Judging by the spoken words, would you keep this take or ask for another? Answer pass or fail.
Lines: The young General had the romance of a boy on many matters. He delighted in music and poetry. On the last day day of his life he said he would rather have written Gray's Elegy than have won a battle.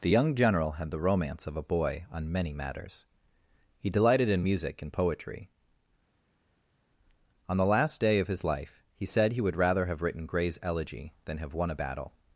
fail